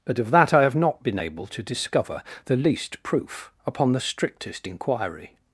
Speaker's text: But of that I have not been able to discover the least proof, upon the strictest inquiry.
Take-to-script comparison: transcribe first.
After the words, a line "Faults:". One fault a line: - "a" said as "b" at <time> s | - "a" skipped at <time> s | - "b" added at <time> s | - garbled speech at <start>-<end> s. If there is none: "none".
But of that I have not been able to discover the least proof, upon the strictest inquiry.
Faults:
none